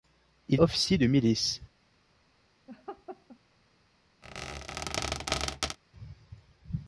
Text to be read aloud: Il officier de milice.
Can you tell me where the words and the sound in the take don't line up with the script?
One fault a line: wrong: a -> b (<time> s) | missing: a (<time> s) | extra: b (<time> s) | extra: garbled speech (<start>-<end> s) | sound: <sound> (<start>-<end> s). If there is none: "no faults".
sound: laugh (2.7-3.4 s)
sound: squeak (4.2-5.8 s)